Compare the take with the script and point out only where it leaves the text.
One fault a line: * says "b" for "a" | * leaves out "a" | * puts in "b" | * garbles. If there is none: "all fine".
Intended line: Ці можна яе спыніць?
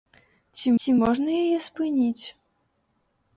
* puts in "ці"